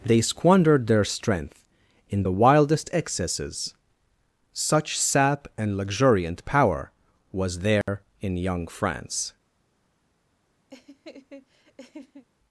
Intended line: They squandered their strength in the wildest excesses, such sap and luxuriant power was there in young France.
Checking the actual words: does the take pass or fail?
pass